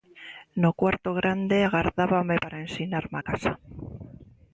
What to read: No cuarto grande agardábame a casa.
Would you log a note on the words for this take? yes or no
yes